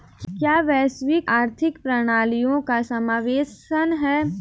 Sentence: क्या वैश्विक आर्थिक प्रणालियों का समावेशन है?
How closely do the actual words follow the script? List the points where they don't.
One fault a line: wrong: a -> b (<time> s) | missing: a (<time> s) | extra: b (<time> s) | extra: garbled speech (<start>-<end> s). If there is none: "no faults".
no faults